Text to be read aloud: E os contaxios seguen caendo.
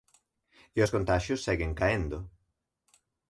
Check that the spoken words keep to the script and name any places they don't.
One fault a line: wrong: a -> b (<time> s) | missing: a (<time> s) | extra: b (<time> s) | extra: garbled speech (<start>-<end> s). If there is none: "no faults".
no faults